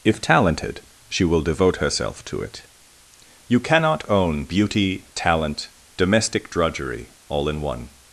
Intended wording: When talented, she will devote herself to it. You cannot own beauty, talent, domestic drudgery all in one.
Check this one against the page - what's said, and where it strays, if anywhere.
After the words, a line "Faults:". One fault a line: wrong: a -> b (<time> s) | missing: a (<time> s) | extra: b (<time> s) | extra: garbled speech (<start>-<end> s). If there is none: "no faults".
If talented, she will devote herself to it. You cannot own beauty, talent, domestic drudgery all in one.
Faults:
wrong: When -> If (0.0 s)